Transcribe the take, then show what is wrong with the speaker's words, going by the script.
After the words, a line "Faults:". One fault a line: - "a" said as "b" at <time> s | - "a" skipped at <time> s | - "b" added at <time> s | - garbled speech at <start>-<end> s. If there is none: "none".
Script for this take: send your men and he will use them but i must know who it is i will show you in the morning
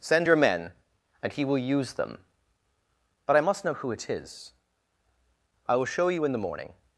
send your men and he will use them but i must know who it is i will show you in the morning
Faults:
none